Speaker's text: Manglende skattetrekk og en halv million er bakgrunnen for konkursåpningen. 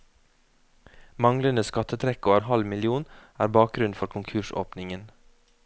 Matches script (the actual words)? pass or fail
pass